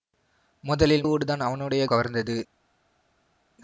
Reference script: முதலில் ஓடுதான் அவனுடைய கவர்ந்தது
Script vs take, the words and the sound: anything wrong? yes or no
no